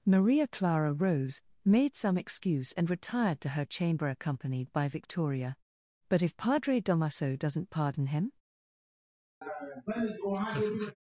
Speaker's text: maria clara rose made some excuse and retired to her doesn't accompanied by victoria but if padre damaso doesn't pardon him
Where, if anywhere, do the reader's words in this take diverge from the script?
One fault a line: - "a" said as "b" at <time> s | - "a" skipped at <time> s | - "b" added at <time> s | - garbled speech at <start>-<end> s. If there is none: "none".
- "doesn't" said as "chamber" at 3.6 s